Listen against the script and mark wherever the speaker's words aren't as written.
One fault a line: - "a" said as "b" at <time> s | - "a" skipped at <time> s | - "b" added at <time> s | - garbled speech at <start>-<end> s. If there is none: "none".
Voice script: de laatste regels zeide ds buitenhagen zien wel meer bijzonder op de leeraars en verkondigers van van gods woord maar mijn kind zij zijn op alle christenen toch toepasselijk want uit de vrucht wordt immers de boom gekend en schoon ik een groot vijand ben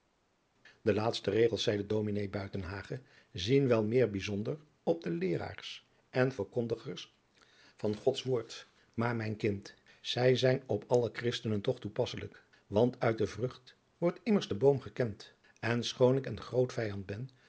- "van" skipped at 8.0 s